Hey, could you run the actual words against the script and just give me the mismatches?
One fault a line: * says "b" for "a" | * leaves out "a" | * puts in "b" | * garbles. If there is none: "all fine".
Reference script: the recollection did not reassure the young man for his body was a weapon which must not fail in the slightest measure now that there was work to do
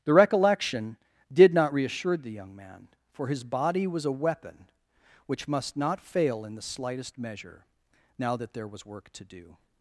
all fine